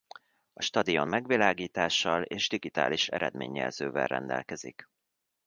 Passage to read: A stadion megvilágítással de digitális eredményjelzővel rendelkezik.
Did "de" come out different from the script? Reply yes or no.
yes